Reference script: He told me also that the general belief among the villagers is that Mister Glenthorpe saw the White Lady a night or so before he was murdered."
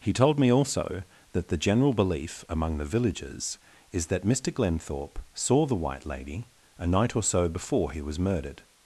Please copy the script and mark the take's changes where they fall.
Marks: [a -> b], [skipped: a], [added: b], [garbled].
He told me also that the general belief among the villagers is that Mister Glenthorpe saw the White Lady a night or so before he was murdered."